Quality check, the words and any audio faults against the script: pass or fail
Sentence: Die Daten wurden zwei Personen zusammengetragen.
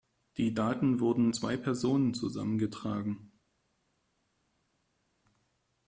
pass